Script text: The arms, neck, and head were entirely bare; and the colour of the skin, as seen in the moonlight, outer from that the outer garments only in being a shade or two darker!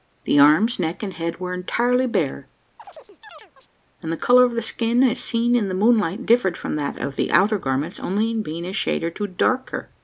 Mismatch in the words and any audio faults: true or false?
true